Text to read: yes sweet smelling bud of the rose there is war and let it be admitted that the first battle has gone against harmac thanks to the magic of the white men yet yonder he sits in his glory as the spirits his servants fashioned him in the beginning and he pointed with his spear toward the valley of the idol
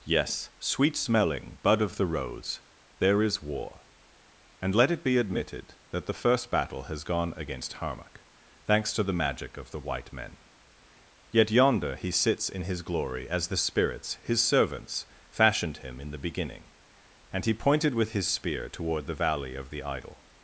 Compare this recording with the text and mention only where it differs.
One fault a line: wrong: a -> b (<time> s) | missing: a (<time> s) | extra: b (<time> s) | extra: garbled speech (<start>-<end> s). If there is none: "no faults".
no faults